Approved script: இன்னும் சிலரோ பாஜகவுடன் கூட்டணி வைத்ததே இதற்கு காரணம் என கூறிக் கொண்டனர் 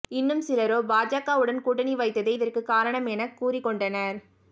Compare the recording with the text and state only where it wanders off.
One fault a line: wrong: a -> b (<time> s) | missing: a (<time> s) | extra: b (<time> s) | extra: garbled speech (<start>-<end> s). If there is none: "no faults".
no faults